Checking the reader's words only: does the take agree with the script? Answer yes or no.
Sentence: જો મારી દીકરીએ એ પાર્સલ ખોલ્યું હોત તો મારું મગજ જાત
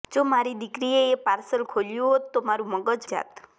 yes